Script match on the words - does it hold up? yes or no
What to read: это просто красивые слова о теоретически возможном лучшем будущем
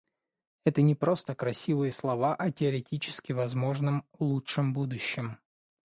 no